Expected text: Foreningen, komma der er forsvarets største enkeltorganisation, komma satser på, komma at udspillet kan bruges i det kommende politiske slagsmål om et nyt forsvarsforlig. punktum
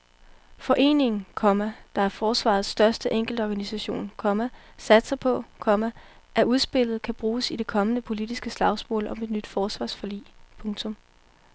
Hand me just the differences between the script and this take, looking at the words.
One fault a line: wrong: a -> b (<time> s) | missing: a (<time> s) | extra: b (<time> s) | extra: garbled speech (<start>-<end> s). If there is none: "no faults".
no faults